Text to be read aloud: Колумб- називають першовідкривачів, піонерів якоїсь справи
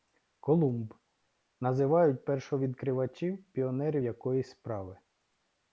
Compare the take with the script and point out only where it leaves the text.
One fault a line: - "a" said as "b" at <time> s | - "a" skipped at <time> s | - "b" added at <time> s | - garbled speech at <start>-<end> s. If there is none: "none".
none